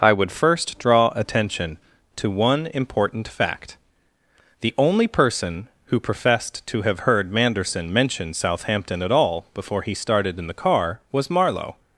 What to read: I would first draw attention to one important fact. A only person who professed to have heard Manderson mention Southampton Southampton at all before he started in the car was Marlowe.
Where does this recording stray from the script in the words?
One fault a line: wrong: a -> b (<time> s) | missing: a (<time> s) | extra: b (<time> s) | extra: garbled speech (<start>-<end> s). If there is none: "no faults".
wrong: A -> The (4.6 s)
missing: Southampton (9.0 s)